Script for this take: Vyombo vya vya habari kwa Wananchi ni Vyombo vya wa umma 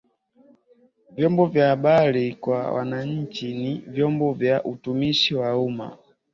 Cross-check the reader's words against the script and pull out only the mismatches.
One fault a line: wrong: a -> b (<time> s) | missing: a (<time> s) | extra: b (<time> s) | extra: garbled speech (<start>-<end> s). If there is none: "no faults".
missing: vya (1.7 s)
extra: utumishi (4.6 s)